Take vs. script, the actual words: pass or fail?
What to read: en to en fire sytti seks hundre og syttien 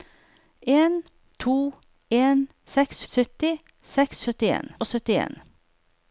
fail